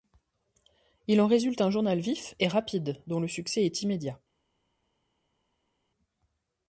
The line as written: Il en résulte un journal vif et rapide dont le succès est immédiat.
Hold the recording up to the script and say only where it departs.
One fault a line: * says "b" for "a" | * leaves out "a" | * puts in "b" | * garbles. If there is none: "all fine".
all fine